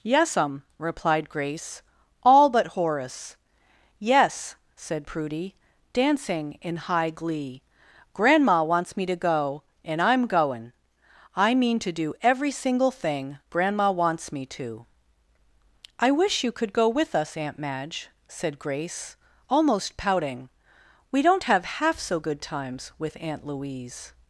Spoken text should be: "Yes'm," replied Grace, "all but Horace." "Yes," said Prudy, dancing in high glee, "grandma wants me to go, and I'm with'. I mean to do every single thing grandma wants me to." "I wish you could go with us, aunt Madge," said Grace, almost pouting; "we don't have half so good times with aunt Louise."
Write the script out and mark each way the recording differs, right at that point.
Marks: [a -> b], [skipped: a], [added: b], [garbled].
"Yes'm," replied Grace, "all but Horace." "Yes," said Prudy, dancing in high glee, "grandma wants me to go, and I'm [with'. -> goin] I mean to do every single thing grandma wants me to." "I wish you could go with us, aunt Madge," said Grace, almost pouting; "we don't have half so good times with aunt Louise."